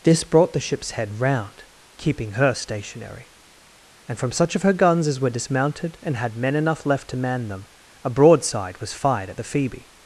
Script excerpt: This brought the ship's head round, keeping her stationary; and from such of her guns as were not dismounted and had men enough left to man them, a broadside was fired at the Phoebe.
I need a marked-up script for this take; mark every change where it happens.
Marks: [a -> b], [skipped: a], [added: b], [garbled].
This brought the ship's head round, keeping her stationary; and from such of her guns as were [skipped: not] dismounted and had men enough left to man them, a broadside was fired at the Phoebe.